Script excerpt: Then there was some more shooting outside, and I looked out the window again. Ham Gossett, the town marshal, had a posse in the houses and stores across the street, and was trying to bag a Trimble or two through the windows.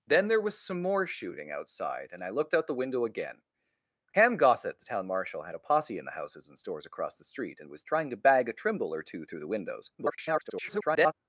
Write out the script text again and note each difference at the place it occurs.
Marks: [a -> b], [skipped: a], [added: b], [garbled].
Then there was some more shooting outside, and I looked out the window again. Ham Gossett, the town marshal, had a posse in the houses and stores across the street, and was trying to bag a Trimble or two through the windows. [garbled]